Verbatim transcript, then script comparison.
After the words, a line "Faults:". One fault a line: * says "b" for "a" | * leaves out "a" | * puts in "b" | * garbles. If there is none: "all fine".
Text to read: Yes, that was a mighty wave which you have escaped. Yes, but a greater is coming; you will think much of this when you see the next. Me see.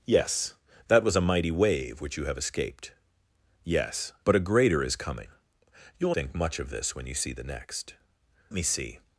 Yes, that was a mighty wave which you have escaped. Yes, but a greater is coming; you will think much of this when you see the next. Me see.
Faults:
all fine